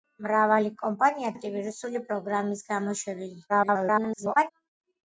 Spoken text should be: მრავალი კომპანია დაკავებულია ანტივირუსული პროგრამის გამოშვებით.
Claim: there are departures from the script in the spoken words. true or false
true